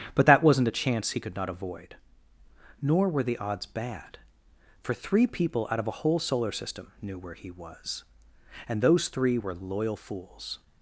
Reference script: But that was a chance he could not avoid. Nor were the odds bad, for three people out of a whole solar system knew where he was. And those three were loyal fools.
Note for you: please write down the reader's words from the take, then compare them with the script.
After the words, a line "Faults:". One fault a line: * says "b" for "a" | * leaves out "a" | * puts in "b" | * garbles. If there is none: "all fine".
But that wasn't a chance he could not avoid. Nor were the odds bad, for three people out of a whole solar system knew where he was. And those three were loyal fools.
Faults:
* says "wasn't" for "was"